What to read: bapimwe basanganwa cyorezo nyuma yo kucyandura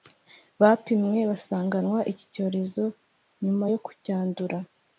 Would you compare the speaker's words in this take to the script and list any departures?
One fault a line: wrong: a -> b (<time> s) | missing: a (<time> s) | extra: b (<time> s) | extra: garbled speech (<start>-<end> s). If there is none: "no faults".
extra: iki (2.1 s)